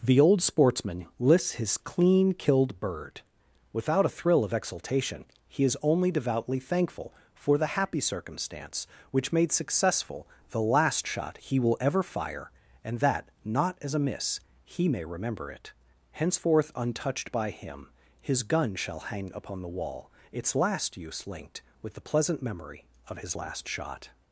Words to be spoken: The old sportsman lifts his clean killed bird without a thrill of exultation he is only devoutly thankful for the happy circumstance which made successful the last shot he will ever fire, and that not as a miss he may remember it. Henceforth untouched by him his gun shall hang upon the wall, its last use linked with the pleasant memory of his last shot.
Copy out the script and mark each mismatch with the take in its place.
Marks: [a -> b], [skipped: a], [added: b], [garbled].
The old sportsman [lifts -> lists] his clean killed bird without a thrill of exultation he is only devoutly thankful for the happy circumstance which made successful the last shot he will ever fire, and that not as a miss he may remember it. Henceforth untouched by him his gun shall hang upon the wall, its last use linked with the pleasant memory of his last shot.